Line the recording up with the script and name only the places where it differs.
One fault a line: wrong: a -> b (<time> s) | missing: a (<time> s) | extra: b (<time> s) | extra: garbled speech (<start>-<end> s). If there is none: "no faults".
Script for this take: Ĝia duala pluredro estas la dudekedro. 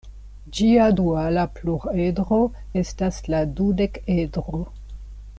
no faults